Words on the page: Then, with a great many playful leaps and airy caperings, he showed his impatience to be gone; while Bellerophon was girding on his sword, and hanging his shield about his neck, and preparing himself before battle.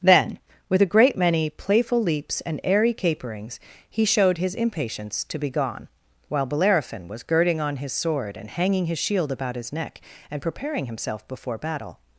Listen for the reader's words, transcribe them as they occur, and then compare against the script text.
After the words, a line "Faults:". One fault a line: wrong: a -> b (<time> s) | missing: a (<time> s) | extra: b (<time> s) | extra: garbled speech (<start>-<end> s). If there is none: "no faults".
Then, with a great many playful leaps and airy caperings, he showed his impatience to be gone; while Bellerophon was girding on his sword, and hanging his shield about his neck, and preparing himself before battle.
Faults:
no faults